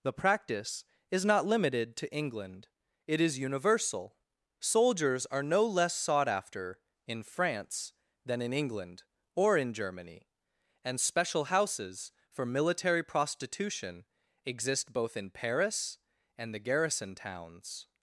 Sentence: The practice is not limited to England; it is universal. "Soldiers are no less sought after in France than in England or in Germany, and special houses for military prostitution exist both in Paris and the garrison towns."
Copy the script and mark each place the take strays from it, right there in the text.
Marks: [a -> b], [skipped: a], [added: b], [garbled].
The practice is not limited to England; it is universal. "Soldiers are no less sought after in France than in England or in Germany, and special houses for military prostitution exist both in Paris and the garrison towns."